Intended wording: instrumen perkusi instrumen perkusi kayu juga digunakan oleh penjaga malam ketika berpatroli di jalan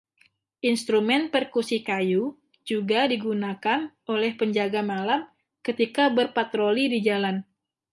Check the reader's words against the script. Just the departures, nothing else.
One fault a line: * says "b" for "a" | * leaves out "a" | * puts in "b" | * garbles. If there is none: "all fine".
* leaves out "instrumen perkusi"